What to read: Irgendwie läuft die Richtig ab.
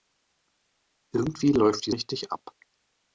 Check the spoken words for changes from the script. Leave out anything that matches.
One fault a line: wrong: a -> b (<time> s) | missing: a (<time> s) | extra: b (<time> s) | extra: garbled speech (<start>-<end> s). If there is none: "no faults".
no faults